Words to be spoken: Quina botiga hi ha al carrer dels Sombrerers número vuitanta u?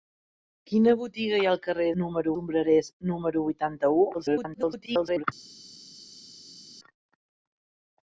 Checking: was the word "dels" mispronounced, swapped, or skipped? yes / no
yes